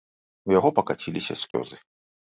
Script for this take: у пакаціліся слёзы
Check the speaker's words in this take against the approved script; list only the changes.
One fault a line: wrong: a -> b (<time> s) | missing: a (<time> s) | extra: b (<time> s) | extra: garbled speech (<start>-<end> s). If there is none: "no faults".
extra: яго (0.6 s)